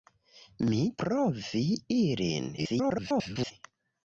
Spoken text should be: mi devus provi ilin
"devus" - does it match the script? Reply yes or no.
no